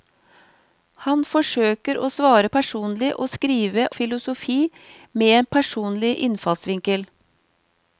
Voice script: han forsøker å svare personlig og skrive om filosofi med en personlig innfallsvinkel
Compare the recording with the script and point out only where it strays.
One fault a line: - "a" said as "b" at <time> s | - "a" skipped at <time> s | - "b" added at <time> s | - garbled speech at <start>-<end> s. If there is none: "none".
- "om" skipped at 3.9 s